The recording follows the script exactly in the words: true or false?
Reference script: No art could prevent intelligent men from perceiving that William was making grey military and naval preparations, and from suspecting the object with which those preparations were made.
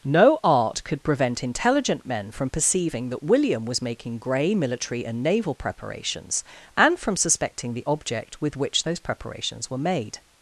true